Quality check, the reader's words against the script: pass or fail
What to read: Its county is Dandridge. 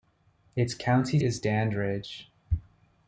pass